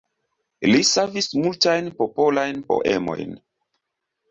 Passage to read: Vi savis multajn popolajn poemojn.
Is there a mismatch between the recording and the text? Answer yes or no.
yes